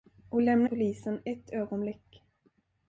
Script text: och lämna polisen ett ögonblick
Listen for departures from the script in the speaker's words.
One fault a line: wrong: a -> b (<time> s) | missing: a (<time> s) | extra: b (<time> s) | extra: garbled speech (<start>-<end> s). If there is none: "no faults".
no faults